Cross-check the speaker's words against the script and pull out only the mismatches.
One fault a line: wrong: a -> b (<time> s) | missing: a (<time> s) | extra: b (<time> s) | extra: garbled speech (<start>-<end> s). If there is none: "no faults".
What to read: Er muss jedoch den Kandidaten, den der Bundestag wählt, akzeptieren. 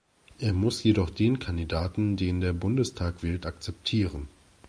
no faults